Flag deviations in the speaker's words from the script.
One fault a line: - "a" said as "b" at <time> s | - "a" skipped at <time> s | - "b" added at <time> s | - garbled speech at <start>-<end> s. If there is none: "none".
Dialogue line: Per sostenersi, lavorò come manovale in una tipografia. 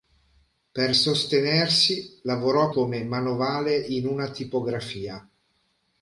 none